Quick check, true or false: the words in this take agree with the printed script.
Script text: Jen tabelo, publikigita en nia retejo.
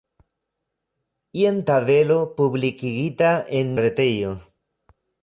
false